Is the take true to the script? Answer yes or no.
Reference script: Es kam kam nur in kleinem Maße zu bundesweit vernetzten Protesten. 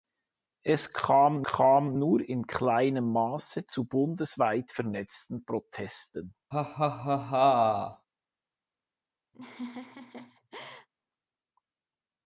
yes